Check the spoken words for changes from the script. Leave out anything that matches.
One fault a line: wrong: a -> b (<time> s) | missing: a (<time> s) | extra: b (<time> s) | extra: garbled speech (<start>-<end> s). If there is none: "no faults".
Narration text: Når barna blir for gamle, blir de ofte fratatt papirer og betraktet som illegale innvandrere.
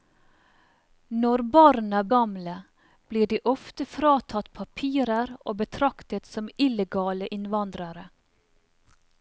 missing: blir for (2.0 s)